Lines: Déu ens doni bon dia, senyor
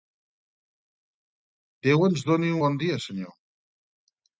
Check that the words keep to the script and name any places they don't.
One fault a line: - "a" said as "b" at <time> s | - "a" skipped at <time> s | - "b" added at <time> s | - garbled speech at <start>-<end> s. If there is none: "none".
none